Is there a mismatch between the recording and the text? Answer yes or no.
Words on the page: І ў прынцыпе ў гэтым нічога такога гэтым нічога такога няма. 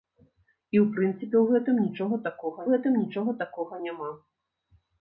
no